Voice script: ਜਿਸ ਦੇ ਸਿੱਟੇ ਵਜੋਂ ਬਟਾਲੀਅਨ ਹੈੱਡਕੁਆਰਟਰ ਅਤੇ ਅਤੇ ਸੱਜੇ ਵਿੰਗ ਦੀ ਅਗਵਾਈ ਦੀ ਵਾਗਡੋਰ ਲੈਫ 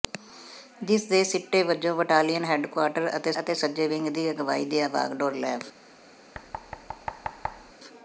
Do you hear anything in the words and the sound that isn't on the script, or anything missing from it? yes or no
yes